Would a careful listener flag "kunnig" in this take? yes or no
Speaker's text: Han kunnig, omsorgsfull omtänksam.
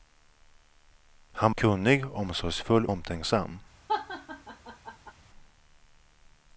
no